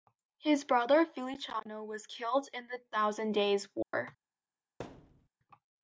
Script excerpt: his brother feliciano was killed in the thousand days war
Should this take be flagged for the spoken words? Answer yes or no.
no